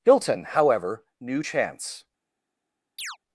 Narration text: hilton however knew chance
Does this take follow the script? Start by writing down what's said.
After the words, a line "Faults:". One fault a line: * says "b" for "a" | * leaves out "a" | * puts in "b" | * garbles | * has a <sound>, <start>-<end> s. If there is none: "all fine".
hilton however knew chance
Faults:
* has a chirp, 3.0-3.2 s